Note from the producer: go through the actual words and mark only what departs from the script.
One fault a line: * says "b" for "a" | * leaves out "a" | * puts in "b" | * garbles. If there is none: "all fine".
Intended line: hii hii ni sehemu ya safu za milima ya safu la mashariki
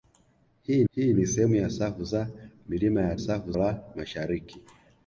all fine